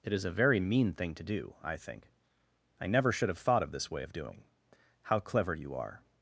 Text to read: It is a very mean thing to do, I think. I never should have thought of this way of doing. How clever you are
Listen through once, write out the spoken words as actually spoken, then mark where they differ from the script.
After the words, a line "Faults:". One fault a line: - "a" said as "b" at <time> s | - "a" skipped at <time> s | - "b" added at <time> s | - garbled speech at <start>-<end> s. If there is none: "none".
It is a very mean thing to do, I think. I never should have thought of this way of doing. How clever you are
Faults:
none